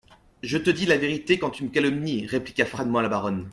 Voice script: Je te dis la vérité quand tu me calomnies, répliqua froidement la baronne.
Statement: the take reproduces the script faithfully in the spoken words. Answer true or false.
true